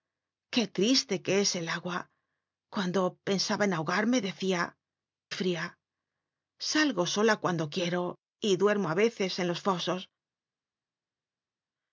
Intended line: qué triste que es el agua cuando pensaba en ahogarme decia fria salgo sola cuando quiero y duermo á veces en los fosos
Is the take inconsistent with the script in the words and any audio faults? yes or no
no